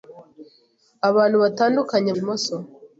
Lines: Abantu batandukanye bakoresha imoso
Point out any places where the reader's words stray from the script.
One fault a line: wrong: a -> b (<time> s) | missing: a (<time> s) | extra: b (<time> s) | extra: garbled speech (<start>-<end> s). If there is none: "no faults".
missing: bakoresha (2.1 s)